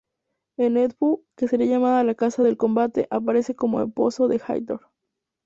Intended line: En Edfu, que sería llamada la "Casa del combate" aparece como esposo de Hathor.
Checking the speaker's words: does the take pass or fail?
pass